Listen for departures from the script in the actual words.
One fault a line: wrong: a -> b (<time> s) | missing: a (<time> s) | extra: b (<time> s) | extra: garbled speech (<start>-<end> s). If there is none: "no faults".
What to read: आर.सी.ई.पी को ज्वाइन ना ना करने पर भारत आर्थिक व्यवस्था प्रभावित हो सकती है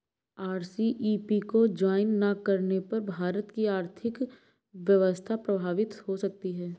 missing: ना (2.3 s)
extra: की (3.5 s)